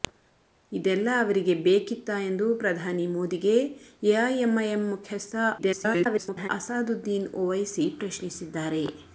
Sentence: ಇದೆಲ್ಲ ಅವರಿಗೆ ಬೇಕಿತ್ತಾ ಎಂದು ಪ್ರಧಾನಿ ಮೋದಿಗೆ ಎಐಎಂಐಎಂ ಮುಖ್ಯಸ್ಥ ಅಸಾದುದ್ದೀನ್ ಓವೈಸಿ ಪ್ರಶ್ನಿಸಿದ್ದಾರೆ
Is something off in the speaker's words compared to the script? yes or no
yes